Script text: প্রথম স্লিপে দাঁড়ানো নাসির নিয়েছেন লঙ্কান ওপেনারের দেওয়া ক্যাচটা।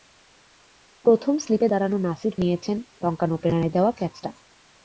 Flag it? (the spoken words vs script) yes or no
no